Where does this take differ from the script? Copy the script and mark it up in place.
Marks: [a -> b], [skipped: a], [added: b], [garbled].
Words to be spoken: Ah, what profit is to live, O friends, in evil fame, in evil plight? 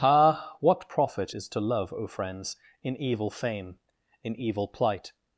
Ah, what profit is to [live, -> love] O friends, in evil fame, in evil plight?